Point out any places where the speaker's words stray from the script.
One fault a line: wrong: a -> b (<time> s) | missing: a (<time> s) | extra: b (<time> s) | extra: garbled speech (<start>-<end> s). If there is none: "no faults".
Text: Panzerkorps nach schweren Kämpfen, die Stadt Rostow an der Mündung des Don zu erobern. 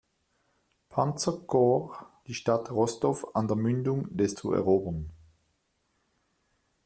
missing: nach schweren Kämpfen (2.0 s)
missing: Don (4.4 s)